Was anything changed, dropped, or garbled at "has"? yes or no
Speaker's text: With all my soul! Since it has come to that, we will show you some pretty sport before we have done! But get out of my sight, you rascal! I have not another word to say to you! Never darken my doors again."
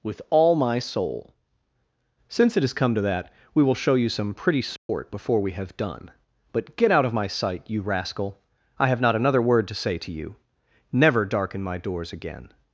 no